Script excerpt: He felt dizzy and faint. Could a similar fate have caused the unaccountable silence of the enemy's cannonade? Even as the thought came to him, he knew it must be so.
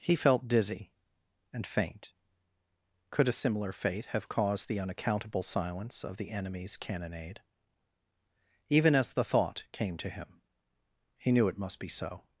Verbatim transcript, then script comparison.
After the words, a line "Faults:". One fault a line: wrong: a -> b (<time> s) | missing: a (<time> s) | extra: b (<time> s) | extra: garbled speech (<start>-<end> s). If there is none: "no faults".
He felt dizzy and faint. Could a similar fate have caused the unaccountable silence of the enemy's cannonade? Even as the thought came to him, he knew it must be so.
Faults:
no faults